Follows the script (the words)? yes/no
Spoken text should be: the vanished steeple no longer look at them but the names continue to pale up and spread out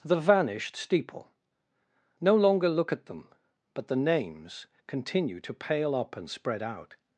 yes